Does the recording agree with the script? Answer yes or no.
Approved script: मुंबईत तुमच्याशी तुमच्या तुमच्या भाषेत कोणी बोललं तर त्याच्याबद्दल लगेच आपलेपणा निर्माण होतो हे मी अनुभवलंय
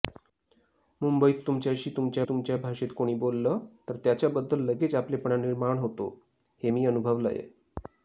yes